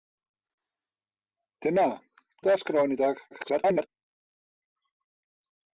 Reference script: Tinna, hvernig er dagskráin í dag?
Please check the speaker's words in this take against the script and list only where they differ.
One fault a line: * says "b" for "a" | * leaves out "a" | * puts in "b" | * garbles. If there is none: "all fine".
* leaves out "hvernig"
* garbles